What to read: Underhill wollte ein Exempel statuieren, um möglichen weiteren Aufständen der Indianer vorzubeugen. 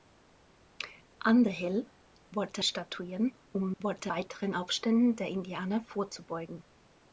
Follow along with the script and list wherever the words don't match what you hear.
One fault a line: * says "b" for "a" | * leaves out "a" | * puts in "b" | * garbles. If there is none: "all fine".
* leaves out "ein Exempel"
* says "wollte" for "möglichen"